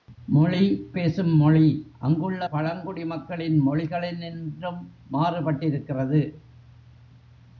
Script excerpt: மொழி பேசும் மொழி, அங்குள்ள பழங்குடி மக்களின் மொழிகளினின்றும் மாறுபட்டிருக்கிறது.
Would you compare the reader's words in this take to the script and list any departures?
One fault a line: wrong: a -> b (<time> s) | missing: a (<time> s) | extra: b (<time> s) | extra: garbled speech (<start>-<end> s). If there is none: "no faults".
no faults